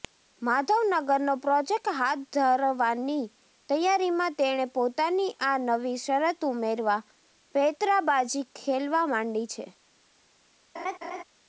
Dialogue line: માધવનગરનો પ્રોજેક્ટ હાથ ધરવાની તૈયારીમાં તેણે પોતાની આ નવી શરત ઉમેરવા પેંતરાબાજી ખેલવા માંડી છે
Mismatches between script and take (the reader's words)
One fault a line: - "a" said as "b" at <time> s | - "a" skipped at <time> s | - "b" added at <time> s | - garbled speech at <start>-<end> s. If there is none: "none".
none